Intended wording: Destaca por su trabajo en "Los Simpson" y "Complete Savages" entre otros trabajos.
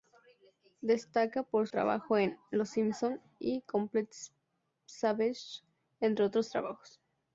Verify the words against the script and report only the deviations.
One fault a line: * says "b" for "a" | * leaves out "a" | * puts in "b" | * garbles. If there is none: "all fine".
* leaves out "su"